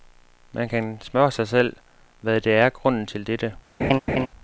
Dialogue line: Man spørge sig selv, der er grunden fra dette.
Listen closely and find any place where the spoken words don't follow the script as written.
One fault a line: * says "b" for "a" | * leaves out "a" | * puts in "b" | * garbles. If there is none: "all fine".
* puts in "kan"
* puts in "hvad"
* says "til" for "fra"